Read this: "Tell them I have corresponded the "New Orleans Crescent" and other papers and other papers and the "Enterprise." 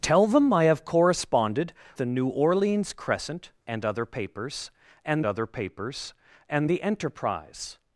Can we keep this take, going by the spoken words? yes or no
yes